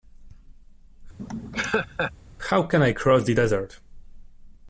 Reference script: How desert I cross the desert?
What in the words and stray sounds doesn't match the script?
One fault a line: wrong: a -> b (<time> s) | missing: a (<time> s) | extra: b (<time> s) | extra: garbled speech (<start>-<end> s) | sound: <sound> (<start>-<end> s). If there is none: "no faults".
sound: laugh (1.2-2.1 s)
wrong: desert -> can (2.6 s)